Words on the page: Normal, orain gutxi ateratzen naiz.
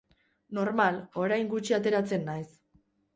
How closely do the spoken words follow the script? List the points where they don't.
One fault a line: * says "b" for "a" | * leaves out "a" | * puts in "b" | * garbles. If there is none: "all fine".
all fine